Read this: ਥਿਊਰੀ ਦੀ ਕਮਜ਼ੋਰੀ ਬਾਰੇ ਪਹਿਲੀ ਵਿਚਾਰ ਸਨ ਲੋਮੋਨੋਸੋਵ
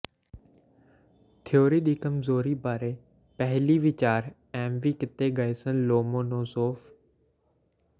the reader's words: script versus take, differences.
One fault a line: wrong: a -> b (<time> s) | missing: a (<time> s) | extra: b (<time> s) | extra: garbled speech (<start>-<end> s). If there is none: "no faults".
extra: ਐਮਵੀ ਕੀਤੇ ਗਏ (4.5 s)